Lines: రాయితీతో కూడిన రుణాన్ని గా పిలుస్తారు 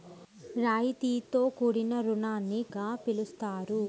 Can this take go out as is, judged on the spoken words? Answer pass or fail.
pass